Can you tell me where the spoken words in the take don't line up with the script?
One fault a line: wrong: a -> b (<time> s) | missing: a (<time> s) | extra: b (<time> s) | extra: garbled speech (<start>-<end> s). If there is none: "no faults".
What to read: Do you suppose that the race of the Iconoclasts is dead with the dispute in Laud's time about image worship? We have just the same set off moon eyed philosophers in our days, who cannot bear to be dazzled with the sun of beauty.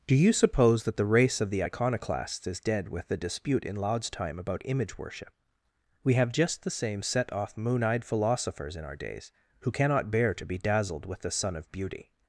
no faults